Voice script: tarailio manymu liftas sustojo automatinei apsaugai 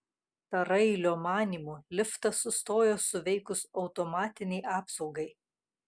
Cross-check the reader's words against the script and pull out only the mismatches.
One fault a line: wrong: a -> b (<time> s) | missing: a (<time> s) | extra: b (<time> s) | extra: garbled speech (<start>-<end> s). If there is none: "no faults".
extra: suveikus (3.1 s)